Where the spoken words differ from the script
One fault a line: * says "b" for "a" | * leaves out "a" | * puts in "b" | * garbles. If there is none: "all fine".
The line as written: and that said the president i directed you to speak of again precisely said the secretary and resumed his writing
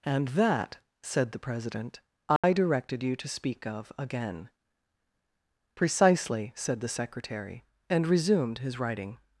all fine